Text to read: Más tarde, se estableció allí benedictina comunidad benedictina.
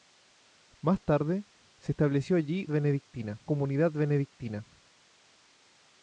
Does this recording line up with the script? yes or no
yes